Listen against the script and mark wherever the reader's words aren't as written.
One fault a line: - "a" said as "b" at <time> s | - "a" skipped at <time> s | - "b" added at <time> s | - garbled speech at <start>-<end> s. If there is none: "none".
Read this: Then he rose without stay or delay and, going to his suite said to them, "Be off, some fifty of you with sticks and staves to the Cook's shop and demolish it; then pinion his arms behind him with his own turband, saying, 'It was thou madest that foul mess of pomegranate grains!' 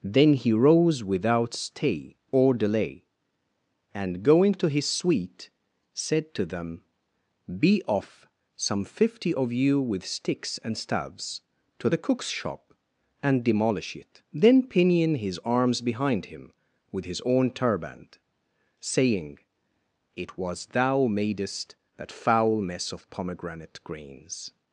none